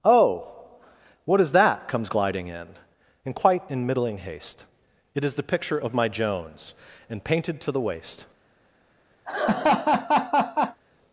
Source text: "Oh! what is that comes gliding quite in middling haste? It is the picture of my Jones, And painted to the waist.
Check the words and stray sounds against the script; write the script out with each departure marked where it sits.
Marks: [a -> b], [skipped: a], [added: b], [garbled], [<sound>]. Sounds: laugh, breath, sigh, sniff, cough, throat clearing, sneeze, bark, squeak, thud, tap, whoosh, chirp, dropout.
"Oh! what is that comes gliding [added: in And] quite in middling haste? It is the picture of my Jones, And painted to the waist. [laugh]